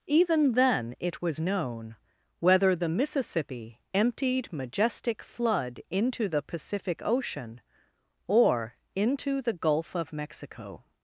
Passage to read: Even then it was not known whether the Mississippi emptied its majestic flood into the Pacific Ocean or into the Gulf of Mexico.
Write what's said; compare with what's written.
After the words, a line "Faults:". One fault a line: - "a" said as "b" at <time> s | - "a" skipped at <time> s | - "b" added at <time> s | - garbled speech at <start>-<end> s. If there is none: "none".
Even then it was known whether the Mississippi emptied majestic flood into the Pacific Ocean or into the Gulf of Mexico.
Faults:
- "not" skipped at 1.4 s
- "its" skipped at 4.5 s